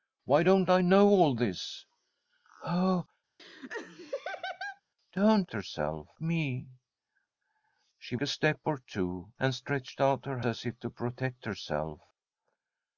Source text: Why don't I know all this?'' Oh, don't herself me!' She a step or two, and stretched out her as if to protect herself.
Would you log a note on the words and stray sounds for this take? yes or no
yes